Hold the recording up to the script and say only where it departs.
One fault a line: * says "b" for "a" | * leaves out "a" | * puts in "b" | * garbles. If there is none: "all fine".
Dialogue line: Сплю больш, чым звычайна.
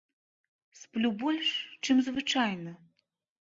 all fine